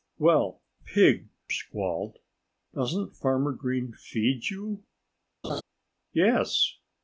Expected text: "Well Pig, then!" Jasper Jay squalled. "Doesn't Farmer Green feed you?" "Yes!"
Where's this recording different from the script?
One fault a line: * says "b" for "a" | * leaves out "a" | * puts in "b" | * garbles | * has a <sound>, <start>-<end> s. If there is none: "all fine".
* leaves out "then Jasper Jay"
* has a laugh, 5.4-5.6 s